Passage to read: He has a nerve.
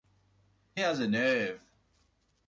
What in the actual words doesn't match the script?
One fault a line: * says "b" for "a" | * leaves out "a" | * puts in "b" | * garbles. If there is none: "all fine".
all fine